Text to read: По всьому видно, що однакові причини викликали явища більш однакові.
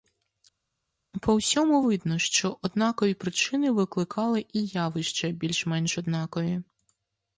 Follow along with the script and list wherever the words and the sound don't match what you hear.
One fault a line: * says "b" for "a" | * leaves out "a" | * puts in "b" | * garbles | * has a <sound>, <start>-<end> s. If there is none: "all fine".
* puts in "і"
* puts in "менш"